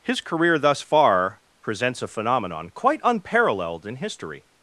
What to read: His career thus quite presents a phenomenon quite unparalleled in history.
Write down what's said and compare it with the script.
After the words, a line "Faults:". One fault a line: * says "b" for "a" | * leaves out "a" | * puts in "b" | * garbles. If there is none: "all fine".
His career thus far presents a phenomenon quite unparalleled in history.
Faults:
* says "far" for "quite"